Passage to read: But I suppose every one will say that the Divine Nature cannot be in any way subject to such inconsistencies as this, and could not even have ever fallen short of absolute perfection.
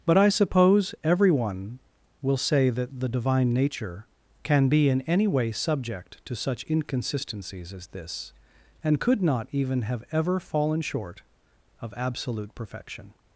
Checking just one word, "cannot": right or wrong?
wrong